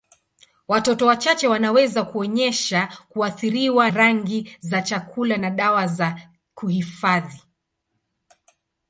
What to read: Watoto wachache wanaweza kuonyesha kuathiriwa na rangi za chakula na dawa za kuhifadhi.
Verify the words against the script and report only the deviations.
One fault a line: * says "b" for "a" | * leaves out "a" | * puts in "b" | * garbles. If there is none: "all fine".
* leaves out "na"